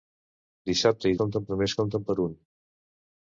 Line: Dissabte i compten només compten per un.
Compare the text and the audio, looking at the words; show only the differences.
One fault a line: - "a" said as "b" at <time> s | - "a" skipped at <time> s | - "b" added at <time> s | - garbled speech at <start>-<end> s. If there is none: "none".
none